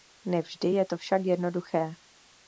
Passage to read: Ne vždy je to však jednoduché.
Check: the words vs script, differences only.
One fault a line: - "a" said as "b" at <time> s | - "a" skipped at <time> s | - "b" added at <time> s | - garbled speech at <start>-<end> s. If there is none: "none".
none